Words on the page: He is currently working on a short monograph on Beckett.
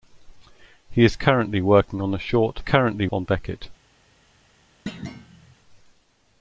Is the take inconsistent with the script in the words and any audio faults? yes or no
yes